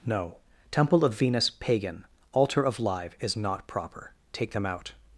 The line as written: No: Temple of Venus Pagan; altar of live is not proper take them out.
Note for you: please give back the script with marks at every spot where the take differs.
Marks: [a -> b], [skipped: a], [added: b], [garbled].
No: Temple of Venus Pagan; altar of live is not proper take them out.